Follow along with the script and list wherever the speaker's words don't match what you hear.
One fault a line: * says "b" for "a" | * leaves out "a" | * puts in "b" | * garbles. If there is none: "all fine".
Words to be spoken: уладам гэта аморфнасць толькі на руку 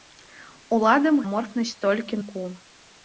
* leaves out "гэта"
* leaves out "на"